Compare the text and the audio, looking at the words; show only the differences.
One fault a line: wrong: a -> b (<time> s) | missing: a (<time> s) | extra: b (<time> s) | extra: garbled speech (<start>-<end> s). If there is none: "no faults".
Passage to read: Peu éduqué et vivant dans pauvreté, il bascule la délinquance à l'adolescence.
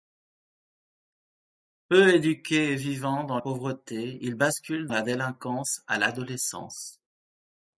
no faults